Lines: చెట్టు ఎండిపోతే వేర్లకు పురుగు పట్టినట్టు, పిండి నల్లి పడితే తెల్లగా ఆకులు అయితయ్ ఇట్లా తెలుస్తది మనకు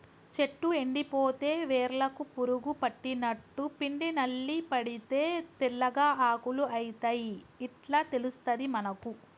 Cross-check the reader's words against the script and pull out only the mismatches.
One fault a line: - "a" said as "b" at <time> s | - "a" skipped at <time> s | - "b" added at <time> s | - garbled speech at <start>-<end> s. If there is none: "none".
none